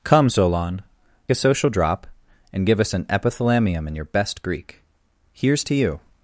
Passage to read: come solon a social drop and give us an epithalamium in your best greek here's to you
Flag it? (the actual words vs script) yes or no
no